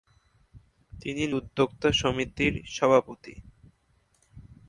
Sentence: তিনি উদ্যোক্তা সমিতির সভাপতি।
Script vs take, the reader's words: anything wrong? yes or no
no